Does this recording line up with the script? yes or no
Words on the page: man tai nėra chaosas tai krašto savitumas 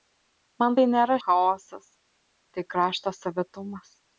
yes